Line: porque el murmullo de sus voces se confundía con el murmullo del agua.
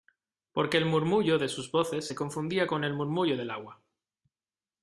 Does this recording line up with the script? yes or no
yes